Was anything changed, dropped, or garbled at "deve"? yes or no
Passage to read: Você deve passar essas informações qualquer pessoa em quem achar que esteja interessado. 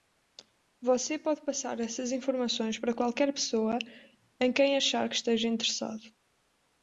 yes